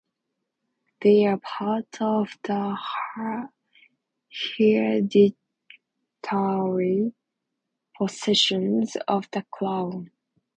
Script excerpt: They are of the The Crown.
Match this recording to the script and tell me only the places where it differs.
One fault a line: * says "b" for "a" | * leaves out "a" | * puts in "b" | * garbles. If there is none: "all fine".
* puts in "part"
* puts in "hereditary possessions of"